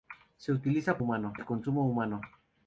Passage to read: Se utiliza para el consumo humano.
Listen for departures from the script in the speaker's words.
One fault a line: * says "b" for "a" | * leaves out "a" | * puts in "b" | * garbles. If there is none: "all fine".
* says "humano" for "para"